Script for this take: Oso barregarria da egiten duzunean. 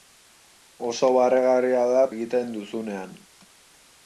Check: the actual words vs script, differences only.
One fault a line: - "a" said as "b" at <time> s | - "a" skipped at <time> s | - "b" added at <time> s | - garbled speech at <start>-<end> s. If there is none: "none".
none